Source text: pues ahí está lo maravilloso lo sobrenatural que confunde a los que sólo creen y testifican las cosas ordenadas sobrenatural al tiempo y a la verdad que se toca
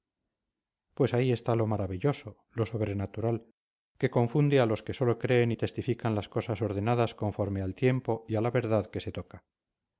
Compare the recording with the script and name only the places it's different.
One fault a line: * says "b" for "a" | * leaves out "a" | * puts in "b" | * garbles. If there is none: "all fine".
* says "conforme" for "sobrenatural"